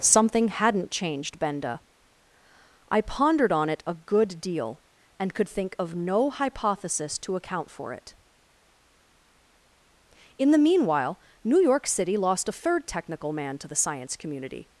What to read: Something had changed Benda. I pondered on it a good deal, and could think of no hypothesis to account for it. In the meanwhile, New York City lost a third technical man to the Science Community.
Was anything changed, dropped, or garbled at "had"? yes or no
yes